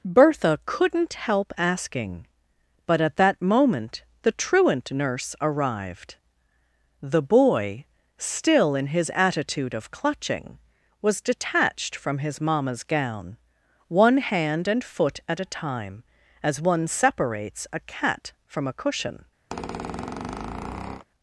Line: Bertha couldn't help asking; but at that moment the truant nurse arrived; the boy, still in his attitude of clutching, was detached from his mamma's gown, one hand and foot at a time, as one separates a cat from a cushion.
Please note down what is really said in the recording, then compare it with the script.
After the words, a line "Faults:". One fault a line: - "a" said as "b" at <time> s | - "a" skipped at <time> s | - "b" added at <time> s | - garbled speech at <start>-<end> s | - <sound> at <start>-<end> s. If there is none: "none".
Bertha couldn't help asking; but at that moment the truant nurse arrived; the boy, still in his attitude of clutching, was detached from his mamma's gown, one hand and foot at a time, as one separates a cat from a cushion.
Faults:
- squeak at 19.5-21.1 s